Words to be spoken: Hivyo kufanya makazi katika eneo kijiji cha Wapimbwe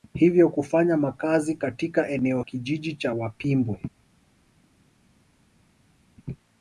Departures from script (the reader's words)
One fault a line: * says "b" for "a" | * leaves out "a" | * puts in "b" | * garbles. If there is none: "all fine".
all fine